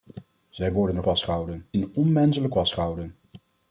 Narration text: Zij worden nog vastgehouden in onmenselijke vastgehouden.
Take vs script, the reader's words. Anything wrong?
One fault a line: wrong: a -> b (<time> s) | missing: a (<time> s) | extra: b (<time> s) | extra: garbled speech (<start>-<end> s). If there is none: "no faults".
no faults